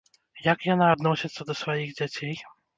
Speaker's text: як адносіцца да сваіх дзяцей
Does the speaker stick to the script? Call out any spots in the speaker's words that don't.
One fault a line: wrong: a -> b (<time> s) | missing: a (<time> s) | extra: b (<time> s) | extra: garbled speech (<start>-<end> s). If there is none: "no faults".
extra: яна (0.7 s)